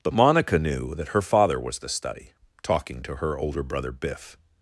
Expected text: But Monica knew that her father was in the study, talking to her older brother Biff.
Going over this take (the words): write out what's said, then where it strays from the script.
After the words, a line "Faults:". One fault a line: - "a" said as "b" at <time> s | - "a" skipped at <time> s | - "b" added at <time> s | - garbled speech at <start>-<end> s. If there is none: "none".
But Monica knew that her father was the study, talking to her older brother Biff.
Faults:
- "in" skipped at 1.8 s